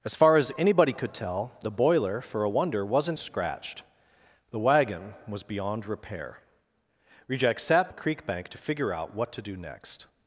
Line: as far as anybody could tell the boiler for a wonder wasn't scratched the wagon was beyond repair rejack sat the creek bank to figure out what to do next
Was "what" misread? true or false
false